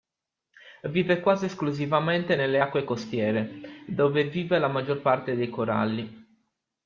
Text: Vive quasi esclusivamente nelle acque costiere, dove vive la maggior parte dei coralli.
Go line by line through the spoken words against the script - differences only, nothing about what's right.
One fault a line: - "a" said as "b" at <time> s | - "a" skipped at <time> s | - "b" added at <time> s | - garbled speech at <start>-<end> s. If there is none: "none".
none